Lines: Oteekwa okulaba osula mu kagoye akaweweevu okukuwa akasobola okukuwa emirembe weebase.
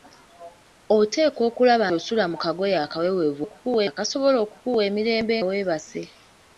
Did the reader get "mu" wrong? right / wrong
right